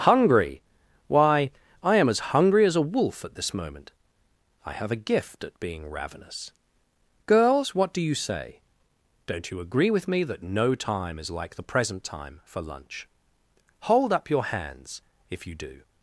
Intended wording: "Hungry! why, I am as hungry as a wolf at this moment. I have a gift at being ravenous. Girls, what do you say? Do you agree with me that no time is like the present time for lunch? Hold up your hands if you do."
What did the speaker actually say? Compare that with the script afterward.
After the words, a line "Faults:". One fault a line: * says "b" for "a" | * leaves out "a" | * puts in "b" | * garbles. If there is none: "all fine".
"Hungry! why, I am as hungry as a wolf at this moment. I have a gift at being ravenous. Girls, what do you say? Don't you agree with me that no time is like the present time for lunch? Hold up your hands if you do."
Faults:
* says "Don't" for "Do"